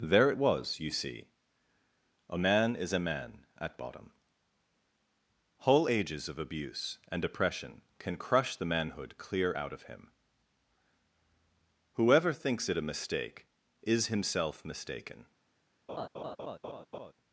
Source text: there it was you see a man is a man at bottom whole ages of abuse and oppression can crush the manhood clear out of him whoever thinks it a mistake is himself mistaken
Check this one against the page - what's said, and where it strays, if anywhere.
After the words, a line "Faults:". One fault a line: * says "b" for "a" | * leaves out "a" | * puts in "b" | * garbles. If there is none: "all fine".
there it was you see a man is a man at bottom whole ages of abuse and oppression can crush the manhood clear out of him whoever thinks it a mistake is himself mistaken
Faults:
all fine